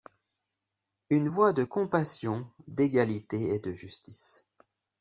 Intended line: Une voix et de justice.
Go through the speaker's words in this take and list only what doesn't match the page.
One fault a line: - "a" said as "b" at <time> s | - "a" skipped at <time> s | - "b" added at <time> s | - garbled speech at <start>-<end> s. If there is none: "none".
- "de compassion d'égalité" added at 1.5 s